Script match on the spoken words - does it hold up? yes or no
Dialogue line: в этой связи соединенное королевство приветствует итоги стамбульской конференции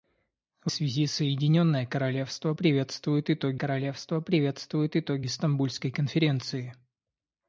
no